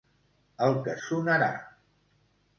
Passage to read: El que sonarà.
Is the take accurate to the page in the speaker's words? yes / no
yes